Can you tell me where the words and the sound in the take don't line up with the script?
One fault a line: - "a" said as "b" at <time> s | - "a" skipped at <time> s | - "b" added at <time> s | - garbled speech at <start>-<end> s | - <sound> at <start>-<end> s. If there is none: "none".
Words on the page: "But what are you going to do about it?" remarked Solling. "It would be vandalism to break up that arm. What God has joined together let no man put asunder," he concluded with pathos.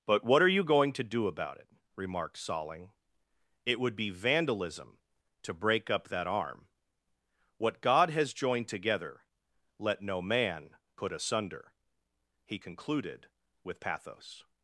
none